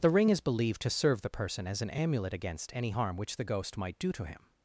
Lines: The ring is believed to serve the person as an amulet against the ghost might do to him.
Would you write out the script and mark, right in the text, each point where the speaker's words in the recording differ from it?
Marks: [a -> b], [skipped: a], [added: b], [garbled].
The ring is believed to serve the person as an amulet against [added: any harm which] the ghost might do to him.